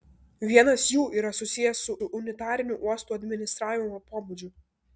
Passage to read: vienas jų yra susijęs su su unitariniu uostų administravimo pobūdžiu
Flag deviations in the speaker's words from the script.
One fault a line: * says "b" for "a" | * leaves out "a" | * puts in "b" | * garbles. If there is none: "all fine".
all fine